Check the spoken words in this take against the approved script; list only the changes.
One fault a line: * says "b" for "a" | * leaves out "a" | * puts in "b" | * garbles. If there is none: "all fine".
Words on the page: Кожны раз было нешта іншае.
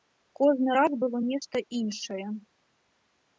all fine